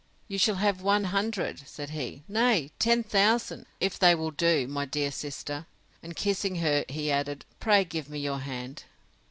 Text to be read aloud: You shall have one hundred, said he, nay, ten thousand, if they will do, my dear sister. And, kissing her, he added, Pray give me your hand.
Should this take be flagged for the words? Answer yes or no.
no